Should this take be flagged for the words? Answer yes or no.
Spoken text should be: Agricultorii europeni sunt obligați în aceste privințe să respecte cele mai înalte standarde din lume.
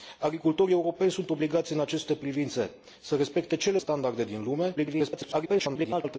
yes